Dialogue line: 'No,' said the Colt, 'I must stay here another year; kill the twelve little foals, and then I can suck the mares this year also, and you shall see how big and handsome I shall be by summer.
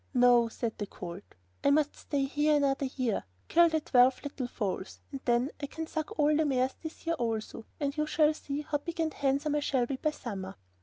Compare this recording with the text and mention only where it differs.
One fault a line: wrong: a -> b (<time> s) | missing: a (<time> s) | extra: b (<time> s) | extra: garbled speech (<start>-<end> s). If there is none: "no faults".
extra: all (6.2 s)